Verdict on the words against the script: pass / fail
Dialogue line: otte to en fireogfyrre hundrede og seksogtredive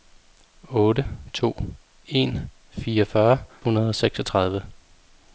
pass